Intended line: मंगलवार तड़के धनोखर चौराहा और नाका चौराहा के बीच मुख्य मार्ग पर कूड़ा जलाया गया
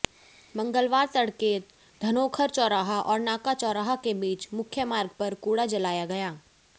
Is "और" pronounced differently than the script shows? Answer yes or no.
no